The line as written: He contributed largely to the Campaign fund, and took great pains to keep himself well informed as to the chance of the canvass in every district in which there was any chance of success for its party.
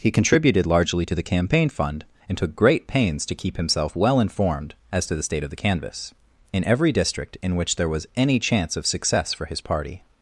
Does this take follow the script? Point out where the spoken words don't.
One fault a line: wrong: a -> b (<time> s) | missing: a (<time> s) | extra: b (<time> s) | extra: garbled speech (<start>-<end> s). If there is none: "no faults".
wrong: chance -> state (5.2 s)
wrong: its -> his (9.4 s)